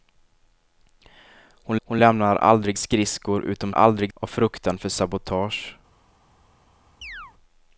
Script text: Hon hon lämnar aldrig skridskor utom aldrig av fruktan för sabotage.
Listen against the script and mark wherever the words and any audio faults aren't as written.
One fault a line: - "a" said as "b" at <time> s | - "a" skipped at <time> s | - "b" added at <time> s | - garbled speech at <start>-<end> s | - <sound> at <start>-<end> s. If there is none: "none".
- chirp at 7.0-7.3 s